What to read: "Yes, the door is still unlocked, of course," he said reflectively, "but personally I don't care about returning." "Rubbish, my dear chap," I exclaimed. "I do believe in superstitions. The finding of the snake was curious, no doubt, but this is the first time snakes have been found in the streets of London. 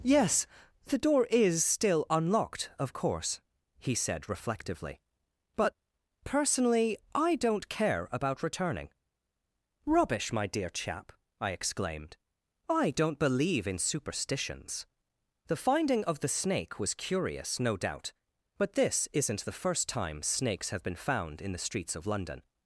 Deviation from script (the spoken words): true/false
true